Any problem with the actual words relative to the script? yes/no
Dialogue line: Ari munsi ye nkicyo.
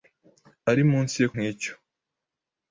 no